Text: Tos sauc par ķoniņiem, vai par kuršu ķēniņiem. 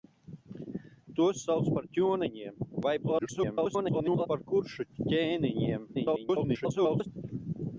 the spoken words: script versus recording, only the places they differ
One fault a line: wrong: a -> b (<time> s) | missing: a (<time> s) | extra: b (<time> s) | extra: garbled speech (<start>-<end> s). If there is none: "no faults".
extra: garbled speech (3.0-4.3 s)
extra: garbled speech (5.9-7.1 s)